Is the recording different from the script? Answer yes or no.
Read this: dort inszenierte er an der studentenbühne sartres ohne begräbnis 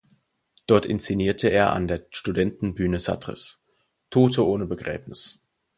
yes